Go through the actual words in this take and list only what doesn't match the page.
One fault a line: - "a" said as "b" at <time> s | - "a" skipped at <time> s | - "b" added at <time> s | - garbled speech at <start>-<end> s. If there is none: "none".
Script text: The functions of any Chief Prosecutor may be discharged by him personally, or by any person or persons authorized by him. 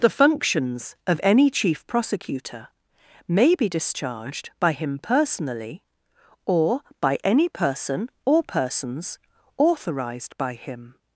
none